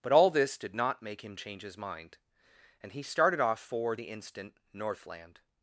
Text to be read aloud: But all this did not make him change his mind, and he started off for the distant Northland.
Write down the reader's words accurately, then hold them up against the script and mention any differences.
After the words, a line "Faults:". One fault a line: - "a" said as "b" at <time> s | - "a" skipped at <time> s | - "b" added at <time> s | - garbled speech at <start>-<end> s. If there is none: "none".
But all this did not make him change his mind, and he started off for the instant Northland.
Faults:
- "distant" said as "instant" at 4.1 s